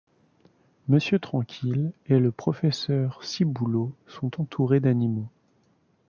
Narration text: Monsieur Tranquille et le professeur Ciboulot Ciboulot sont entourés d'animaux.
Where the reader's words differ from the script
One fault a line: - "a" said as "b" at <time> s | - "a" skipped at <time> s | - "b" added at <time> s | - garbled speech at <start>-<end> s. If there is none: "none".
- "Ciboulot" skipped at 4.0 s